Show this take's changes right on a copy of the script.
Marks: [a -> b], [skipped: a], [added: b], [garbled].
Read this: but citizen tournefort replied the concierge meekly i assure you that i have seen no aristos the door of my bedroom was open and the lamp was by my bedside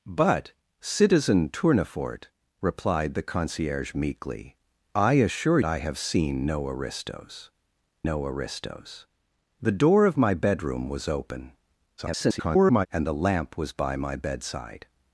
but citizen tournefort replied the concierge meekly i assure [skipped: you that] i have seen no aristos [added: no aristos] the door of my bedroom was open [garbled] and the lamp was by my bedside